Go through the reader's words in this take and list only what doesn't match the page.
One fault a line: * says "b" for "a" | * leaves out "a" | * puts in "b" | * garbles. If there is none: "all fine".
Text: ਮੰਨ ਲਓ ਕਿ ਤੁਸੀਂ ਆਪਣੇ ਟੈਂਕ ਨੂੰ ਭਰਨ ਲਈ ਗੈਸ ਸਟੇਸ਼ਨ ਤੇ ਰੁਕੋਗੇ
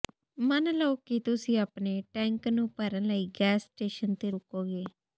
all fine